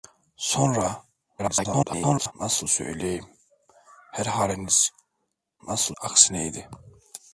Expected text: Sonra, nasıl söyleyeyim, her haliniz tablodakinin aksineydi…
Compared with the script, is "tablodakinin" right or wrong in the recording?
wrong